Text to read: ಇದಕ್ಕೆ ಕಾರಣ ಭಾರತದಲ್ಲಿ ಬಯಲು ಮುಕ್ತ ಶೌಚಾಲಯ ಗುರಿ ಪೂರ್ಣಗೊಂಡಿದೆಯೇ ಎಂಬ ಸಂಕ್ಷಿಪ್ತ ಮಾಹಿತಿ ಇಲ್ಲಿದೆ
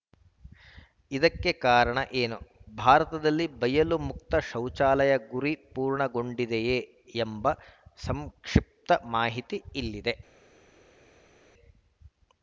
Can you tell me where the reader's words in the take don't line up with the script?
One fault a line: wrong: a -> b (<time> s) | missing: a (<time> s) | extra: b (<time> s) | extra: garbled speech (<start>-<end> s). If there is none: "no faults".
extra: ಏನು (2.2 s)